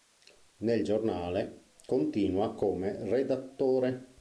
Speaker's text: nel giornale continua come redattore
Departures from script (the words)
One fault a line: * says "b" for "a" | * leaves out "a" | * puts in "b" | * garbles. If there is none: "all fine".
all fine